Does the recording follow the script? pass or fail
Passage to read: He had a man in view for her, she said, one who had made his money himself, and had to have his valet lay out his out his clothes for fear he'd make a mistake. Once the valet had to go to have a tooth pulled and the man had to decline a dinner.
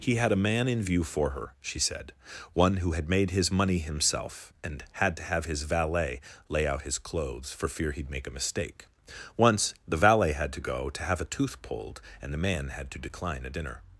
fail